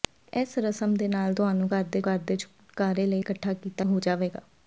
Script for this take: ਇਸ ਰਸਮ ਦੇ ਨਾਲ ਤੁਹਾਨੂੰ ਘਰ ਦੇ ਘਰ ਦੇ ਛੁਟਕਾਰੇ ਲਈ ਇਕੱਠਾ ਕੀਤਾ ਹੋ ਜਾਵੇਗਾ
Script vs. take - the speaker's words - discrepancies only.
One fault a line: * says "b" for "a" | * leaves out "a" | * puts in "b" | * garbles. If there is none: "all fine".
all fine